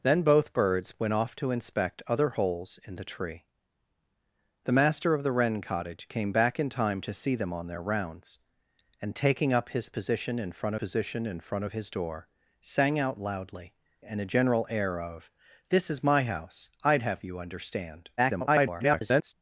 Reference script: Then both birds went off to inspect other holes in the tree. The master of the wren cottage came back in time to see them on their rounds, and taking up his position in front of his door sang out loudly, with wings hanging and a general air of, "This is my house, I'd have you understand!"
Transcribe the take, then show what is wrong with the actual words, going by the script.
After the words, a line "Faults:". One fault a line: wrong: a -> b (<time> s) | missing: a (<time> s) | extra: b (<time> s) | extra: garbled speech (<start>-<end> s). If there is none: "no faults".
Then both birds went off to inspect other holes in the tree. The master of the wren cottage came back in time to see them on their rounds, and taking up his position in front position in front of his door sang out loudly, and a general air of, "This is my house, I'd have you understand!" [garbled]
Faults:
extra: position in front (10.7 s)
missing: with wings hanging (13.7 s)
extra: garbled speech (18.2-19.3 s)